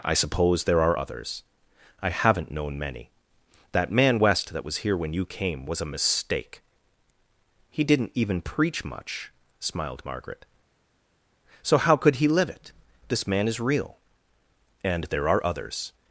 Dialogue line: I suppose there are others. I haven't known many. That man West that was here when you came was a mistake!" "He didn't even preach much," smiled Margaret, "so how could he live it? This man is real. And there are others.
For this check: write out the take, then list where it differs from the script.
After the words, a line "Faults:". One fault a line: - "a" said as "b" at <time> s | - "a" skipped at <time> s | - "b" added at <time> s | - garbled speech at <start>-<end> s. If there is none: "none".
I suppose there are others. I haven't known many. That man West that was here when you came was a mistake!" "He didn't even preach much," smiled Margaret, "so how could he live it? This man is real. And there are others.
Faults:
none